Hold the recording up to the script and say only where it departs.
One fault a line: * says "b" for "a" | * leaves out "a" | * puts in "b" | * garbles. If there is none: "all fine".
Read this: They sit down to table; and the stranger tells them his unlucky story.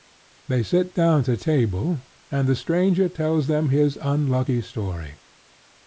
all fine